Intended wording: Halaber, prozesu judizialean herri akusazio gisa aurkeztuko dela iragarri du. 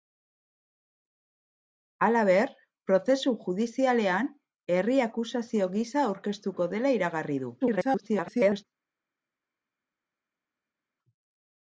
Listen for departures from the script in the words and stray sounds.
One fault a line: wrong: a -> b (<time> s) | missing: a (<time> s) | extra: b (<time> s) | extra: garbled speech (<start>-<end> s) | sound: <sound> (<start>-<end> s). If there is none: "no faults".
extra: garbled speech (7.6-8.6 s)